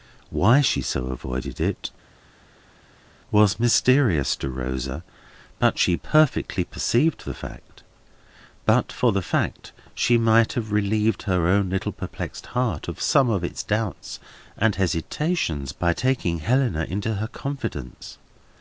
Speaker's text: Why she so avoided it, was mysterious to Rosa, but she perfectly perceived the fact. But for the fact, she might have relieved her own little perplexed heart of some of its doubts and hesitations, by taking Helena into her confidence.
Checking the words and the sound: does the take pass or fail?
pass